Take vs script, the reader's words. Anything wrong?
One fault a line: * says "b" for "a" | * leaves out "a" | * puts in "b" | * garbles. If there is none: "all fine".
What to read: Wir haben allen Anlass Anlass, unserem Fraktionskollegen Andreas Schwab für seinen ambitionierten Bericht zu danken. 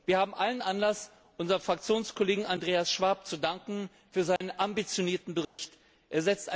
* leaves out "Anlass"